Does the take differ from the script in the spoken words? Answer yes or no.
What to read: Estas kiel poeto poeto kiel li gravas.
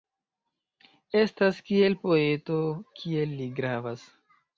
yes